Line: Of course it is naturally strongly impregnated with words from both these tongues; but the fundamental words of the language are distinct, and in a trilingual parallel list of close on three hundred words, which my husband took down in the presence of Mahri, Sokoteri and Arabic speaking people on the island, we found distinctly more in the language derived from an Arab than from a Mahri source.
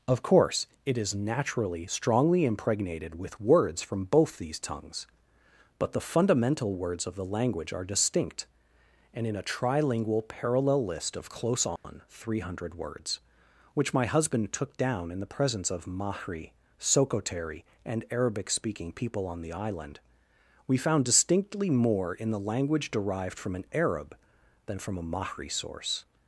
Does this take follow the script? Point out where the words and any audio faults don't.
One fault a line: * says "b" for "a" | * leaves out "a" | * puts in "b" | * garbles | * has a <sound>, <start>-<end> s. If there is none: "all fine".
* has a dropout, 11.8-11.8 s